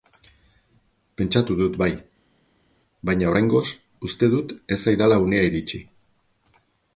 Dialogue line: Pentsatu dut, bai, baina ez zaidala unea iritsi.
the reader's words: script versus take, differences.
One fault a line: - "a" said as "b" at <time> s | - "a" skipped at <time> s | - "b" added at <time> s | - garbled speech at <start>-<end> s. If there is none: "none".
- "oraingoz uste dut" added at 3.3 s